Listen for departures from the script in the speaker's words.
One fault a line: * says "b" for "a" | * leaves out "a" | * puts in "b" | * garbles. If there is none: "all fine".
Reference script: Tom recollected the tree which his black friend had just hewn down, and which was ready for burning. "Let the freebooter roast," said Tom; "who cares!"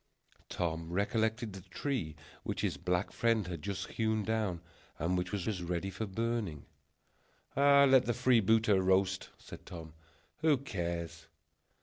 * puts in "was"